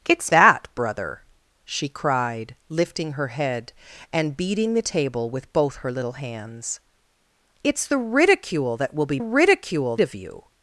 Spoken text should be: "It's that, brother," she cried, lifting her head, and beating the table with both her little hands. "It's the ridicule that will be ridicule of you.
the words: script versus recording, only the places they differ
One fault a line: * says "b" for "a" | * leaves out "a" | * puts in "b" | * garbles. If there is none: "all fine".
all fine